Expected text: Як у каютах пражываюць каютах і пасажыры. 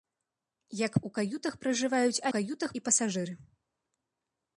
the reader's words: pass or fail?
pass